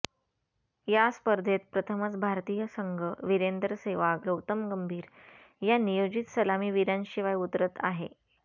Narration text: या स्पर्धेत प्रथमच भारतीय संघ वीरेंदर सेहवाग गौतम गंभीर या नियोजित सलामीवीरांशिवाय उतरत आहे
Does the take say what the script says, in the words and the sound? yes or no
yes